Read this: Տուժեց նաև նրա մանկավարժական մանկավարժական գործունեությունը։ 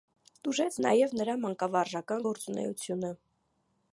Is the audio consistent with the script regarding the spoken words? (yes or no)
no